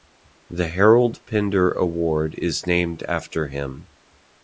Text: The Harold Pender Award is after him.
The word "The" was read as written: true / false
true